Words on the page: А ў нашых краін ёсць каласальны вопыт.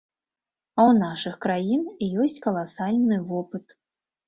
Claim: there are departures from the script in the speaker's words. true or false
false